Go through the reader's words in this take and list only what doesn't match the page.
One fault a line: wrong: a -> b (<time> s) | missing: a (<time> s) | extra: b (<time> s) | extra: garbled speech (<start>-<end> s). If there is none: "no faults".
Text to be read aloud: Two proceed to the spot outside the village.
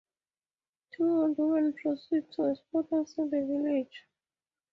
extra: old women (1.0 s)
wrong: the -> a (2.4 s)